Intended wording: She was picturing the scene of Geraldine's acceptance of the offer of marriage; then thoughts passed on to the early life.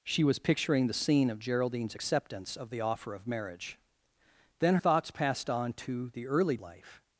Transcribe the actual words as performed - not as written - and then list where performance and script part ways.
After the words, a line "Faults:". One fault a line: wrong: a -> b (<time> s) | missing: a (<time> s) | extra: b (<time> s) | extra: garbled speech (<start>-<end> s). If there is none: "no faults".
She was picturing the scene of Geraldine's acceptance of the offer of marriage; then thoughts passed on to the early life.
Faults:
no faults